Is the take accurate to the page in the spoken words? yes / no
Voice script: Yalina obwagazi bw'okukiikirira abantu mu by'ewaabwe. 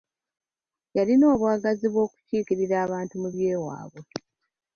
yes